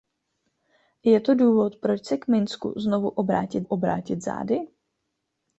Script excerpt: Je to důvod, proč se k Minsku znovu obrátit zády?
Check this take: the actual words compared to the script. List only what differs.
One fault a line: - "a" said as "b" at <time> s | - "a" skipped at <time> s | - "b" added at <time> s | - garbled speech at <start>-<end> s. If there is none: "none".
- "obrátit" added at 3.6 s